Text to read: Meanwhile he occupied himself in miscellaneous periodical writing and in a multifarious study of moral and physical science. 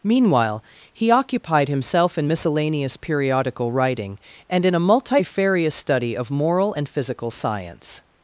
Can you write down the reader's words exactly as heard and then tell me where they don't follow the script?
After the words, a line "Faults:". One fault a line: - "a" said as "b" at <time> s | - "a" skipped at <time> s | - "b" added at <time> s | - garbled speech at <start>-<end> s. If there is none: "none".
Meanwhile he occupied himself in miscellaneous periodical writing and in a multifarious study of moral and physical science.
Faults:
none